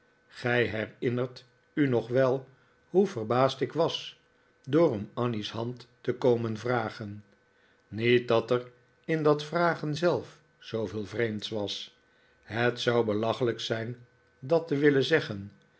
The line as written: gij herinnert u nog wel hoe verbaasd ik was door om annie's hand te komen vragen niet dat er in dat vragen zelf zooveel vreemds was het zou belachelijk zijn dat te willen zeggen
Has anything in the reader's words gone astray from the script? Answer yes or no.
no